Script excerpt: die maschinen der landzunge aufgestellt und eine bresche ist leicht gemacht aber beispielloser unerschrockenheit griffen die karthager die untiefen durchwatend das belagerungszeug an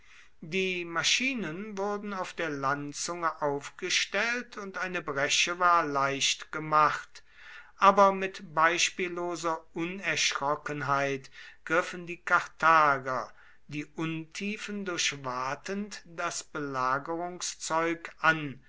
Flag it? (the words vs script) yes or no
yes